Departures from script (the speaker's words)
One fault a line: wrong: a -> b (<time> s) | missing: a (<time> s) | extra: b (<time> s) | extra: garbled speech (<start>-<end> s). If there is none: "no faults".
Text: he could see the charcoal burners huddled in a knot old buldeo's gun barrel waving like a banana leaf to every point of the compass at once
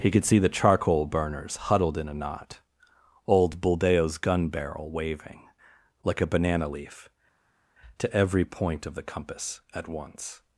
no faults